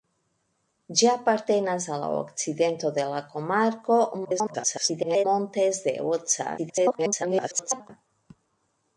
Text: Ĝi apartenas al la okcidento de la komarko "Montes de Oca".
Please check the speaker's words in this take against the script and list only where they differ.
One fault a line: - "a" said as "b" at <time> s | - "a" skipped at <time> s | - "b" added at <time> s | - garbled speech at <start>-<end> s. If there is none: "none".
- garbled speech at 4.2-5.3 s
- garbled speech at 6.6-7.9 s